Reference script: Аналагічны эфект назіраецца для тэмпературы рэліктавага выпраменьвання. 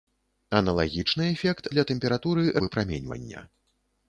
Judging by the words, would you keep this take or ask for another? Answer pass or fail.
fail